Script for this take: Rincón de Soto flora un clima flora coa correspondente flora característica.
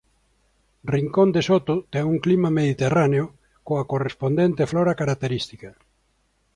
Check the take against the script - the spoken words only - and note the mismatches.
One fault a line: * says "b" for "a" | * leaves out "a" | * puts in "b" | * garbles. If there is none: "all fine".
* says "ten" for "flora"
* says "mediterráneo" for "flora"